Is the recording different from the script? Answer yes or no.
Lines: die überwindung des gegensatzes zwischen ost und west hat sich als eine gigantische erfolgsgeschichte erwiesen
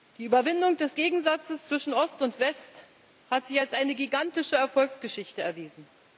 no